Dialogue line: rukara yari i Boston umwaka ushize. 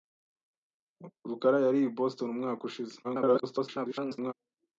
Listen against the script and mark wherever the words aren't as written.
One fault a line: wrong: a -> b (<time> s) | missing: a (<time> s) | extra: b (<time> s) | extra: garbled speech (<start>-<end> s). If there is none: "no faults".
extra: garbled speech (3.0-4.3 s)